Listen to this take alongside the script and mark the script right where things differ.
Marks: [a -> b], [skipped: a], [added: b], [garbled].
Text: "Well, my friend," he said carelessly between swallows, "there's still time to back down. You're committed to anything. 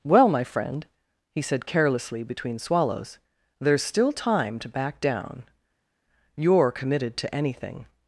"Well, my friend," he said carelessly between swallows, "there's still time to back down. You're committed to anything.